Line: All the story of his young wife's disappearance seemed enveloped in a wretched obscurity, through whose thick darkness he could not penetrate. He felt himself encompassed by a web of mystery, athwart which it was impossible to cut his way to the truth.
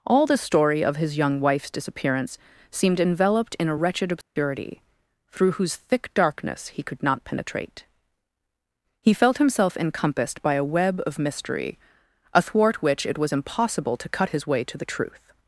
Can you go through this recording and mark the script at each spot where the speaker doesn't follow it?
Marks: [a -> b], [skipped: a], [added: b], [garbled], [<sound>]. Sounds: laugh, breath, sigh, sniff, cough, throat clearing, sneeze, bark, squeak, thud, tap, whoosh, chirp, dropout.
All the story of his young wife's disappearance seemed enveloped in a wretched obscurity, [dropout] through whose thick darkness he could not penetrate. He felt himself encompassed by a web of mystery, athwart which it was impossible to cut his way to the truth.